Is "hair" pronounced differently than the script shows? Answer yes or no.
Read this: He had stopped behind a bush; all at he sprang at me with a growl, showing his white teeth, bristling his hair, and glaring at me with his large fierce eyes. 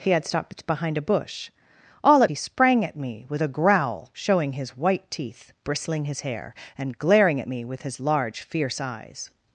no